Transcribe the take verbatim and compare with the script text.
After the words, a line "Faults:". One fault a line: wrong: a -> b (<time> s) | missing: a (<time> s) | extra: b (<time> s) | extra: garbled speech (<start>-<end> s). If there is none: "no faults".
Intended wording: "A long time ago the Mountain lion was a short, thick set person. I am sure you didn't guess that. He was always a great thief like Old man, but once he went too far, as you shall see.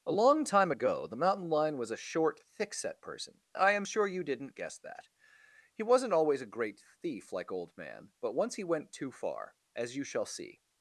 "A long time ago the Mountain lion was a short, thick set person. I am sure you didn't guess that. He wasn't always a great thief like Old man, but once he went too far, as you shall see.
Faults:
wrong: was -> wasn't (5.8 s)